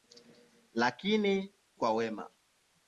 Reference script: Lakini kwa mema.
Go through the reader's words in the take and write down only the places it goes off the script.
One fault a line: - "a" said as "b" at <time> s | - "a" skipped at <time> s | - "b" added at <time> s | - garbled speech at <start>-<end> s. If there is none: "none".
none